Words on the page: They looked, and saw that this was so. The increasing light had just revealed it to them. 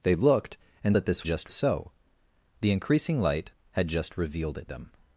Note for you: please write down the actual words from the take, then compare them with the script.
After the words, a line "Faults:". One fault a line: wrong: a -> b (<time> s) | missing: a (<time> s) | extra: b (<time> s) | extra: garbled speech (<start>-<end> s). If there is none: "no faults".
They looked, and that this just so. The increasing light had just revealed it them.
Faults:
missing: saw (1.0 s)
wrong: was -> just (1.2 s)
missing: to (4.7 s)